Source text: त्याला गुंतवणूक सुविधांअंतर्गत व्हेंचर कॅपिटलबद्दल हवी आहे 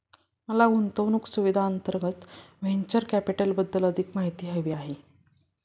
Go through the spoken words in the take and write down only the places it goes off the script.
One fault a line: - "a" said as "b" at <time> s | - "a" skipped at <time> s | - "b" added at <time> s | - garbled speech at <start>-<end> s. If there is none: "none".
- "त्याला" said as "मला" at 0.5 s
- "अधिक माहिती" added at 3.8 s